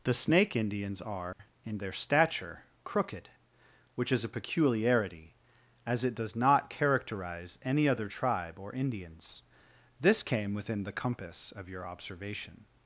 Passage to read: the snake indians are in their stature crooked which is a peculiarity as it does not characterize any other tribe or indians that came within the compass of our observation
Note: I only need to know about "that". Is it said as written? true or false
false